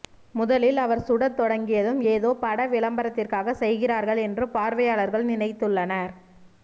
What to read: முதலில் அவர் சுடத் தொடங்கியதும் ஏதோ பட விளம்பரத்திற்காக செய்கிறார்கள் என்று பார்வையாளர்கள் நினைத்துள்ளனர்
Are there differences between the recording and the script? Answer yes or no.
no